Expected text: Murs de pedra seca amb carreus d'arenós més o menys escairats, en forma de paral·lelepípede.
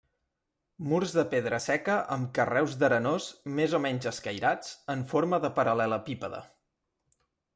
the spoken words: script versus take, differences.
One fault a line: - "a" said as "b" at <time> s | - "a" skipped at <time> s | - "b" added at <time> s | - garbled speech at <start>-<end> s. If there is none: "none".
none